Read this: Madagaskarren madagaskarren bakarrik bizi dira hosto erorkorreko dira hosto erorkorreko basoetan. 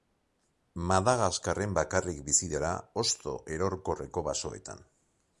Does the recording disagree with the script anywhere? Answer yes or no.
yes